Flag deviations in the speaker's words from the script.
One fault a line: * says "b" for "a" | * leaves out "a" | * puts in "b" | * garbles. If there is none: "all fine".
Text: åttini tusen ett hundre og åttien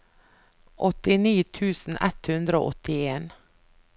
all fine